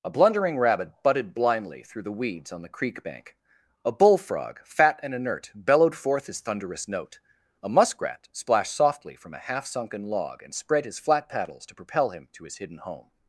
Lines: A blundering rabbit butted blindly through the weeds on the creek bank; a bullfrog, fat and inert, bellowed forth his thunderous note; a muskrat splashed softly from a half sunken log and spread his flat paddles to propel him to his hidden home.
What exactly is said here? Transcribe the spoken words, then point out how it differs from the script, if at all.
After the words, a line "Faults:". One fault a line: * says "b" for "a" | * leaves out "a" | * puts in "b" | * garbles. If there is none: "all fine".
A blundering rabbit butted blindly through the weeds on the creek bank; a bullfrog, fat and inert, bellowed forth his thunderous note; a muskrat splashed softly from a half sunken log and spread his flat paddles to propel him to his hidden home.
Faults:
all fine